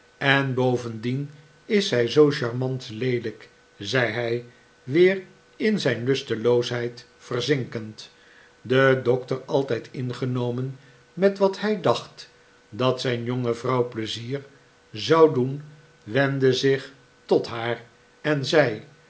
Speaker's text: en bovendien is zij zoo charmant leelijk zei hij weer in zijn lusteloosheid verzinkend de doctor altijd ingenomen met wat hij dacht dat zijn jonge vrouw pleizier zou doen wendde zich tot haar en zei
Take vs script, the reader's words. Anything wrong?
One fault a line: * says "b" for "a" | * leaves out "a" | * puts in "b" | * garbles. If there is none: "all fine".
all fine